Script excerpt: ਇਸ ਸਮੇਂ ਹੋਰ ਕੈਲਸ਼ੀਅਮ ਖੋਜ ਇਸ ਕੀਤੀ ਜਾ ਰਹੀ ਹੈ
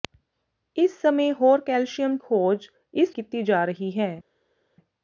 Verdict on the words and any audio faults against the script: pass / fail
pass